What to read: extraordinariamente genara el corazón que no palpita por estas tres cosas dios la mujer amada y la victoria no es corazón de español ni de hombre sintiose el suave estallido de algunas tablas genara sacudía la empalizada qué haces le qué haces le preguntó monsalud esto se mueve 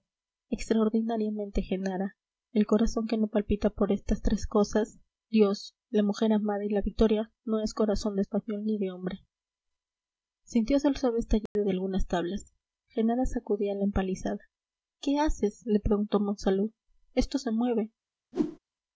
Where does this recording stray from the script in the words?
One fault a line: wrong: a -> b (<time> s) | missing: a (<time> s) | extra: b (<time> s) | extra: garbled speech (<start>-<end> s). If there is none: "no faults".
missing: qué haces le (15.8 s)